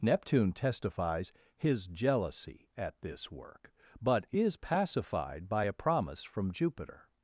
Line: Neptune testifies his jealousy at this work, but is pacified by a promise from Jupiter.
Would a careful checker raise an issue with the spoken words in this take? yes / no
no